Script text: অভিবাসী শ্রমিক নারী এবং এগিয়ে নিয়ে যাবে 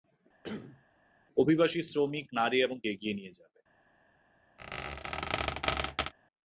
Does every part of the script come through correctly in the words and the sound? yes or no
no